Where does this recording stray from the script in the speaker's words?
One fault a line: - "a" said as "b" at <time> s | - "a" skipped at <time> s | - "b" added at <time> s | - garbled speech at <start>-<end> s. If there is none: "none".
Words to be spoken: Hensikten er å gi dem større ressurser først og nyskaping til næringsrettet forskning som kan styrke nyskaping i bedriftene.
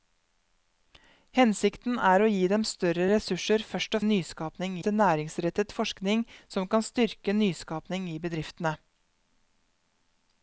none